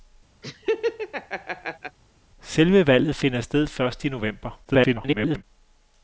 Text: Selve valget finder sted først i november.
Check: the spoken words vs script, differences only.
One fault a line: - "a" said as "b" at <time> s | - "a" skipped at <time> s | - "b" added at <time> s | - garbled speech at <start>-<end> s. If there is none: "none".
- garbled speech at 4.6-5.4 s